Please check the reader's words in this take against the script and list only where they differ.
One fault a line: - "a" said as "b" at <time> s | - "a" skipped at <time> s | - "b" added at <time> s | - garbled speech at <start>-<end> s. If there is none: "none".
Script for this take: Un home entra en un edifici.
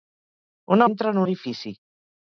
- "home" skipped at 0.8 s
- "un" skipped at 1.2 s